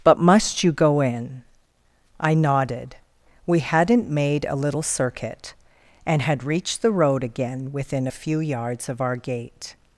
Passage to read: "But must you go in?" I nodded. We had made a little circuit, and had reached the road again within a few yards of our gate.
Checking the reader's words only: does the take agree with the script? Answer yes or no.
no